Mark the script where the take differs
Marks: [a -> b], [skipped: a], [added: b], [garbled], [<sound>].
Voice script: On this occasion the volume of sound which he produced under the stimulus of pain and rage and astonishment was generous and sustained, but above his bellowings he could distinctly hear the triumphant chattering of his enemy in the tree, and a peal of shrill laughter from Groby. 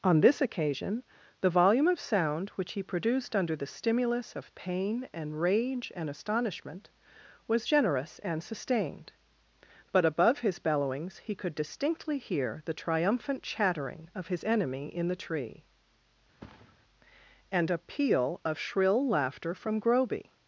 On this occasion the volume of sound which he produced under the stimulus of pain and rage and astonishment was generous and sustained, but above his bellowings he could distinctly hear the triumphant chattering of his enemy in the tree, [thud] and a peal of shrill laughter from Groby.